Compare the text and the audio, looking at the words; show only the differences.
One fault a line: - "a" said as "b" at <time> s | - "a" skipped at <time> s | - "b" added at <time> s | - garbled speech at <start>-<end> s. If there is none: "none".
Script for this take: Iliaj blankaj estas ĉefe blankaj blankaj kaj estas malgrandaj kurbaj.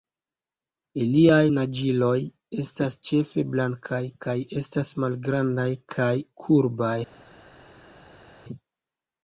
- "blankaj" said as "naĝiloj" at 1.5 s
- "blankaj" skipped at 4.0 s
- "kaj" added at 6.0 s